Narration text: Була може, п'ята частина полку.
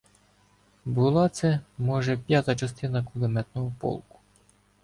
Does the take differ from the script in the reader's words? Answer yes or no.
yes